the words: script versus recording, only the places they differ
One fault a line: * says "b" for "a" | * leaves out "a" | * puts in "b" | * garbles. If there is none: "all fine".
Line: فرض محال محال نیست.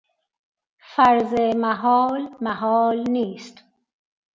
all fine